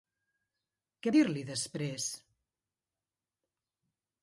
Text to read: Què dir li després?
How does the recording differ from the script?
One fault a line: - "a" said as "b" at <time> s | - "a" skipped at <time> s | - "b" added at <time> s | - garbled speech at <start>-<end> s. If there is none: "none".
none